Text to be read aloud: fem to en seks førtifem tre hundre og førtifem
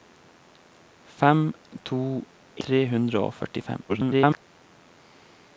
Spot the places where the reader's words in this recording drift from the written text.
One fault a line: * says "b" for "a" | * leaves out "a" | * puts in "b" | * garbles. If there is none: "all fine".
* leaves out "en seks førtifem"
* garbles